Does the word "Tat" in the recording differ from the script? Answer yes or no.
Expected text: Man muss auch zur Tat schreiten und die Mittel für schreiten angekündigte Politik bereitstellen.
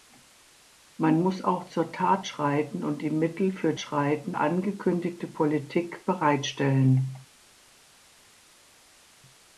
no